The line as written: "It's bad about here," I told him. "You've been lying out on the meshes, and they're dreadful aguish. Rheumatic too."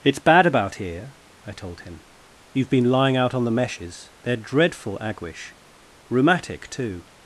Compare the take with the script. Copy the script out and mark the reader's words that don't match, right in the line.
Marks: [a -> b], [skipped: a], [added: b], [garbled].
"It's bad about here," I told him. "You've been lying out on the meshes, [skipped: and] they're dreadful aguish. Rheumatic too."